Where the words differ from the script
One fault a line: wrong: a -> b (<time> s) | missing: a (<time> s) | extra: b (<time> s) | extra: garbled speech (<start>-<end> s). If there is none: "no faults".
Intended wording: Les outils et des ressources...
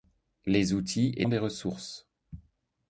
no faults